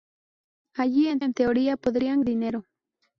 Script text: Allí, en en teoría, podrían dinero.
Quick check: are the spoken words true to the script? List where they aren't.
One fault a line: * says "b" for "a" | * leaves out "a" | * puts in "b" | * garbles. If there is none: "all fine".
all fine